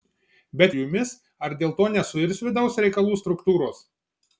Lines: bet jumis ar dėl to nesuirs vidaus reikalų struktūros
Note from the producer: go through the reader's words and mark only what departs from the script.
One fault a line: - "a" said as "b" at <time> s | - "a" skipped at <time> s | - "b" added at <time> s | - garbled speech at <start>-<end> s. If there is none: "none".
none